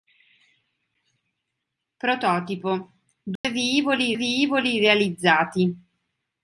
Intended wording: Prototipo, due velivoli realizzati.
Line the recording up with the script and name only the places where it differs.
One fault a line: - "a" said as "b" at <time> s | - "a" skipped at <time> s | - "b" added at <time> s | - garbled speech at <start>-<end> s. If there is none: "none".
- "velivoli" added at 4.2 s